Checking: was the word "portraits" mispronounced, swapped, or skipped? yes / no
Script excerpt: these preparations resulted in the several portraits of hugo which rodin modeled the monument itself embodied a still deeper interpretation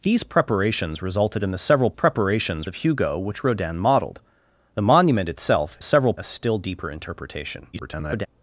yes